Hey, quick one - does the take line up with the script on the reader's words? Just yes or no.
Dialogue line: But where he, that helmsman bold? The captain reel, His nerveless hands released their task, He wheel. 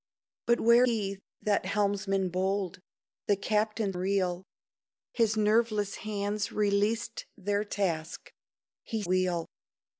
yes